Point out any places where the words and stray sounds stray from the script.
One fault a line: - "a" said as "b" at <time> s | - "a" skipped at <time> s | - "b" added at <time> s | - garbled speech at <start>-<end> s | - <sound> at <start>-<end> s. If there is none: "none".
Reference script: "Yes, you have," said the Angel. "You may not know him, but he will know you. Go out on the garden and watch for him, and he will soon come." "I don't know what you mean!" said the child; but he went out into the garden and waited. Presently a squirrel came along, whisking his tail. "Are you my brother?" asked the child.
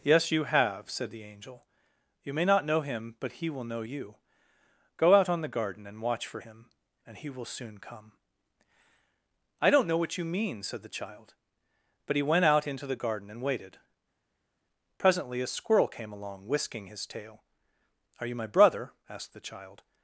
none